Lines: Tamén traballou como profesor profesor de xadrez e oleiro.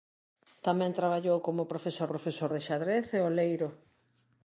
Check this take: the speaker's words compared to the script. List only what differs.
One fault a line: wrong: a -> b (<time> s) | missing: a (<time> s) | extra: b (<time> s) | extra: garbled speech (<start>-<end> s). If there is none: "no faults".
no faults